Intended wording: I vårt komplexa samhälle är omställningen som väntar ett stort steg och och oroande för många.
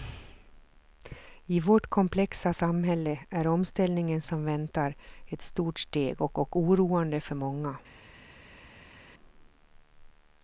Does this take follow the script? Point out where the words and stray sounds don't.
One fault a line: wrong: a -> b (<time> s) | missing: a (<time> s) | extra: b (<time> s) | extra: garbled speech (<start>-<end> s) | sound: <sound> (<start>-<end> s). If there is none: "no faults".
no faults